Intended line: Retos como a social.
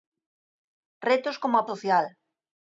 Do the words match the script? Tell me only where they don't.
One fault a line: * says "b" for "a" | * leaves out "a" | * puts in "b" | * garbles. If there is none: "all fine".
all fine